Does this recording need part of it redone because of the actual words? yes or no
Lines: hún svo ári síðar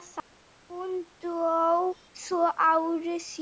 yes